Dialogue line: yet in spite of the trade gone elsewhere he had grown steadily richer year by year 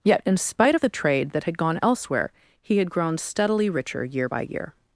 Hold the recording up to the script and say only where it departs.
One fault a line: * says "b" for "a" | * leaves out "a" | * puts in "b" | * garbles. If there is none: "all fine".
* puts in "that had"